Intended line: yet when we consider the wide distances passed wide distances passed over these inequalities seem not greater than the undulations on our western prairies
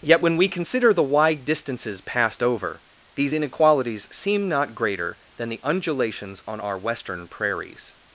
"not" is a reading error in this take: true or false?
false